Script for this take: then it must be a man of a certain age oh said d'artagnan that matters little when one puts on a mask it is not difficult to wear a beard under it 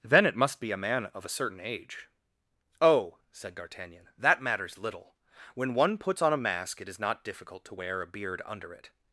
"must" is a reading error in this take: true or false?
false